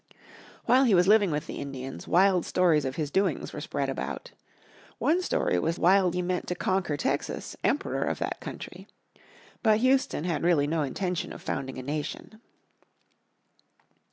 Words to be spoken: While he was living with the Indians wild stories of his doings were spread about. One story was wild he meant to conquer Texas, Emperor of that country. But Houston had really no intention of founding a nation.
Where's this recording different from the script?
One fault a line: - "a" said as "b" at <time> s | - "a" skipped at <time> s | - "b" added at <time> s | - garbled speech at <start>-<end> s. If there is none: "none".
none